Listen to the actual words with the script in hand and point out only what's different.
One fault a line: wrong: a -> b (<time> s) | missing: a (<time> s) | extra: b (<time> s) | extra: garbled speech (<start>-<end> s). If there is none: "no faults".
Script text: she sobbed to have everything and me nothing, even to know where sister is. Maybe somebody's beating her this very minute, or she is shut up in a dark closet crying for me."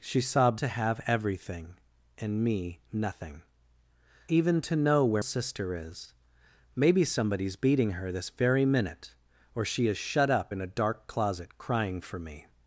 no faults